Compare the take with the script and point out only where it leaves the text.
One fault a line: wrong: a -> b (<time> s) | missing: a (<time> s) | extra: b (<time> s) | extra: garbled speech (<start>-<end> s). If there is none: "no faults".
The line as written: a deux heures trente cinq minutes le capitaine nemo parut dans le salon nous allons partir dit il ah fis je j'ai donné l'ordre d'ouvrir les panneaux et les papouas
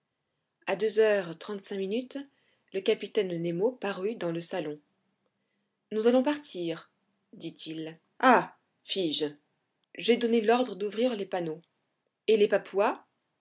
no faults